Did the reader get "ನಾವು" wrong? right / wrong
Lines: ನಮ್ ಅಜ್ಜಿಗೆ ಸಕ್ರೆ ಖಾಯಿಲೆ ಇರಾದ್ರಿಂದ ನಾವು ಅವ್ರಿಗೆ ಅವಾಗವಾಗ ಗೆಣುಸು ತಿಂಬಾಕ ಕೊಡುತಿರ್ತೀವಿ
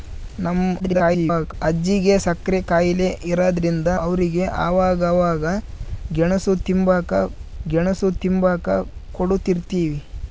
wrong